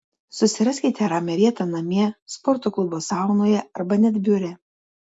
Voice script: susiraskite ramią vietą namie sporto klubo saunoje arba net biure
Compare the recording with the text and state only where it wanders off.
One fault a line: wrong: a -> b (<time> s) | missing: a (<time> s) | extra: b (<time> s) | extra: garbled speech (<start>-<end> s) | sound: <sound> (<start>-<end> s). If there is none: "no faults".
no faults